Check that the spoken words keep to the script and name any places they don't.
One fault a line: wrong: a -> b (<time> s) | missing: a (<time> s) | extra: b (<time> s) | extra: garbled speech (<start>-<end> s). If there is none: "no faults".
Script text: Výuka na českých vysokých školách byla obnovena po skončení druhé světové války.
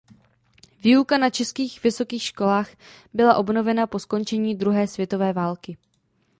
no faults